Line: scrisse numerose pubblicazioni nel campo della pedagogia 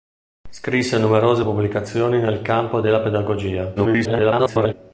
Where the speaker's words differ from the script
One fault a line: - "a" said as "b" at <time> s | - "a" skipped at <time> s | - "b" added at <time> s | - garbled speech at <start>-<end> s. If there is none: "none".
- garbled speech at 3.8-4.7 s